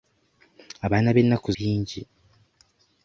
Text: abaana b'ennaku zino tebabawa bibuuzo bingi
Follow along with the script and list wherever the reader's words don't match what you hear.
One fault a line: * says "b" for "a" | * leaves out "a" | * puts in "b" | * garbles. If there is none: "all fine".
* leaves out "zino tebabawa bibuuzo"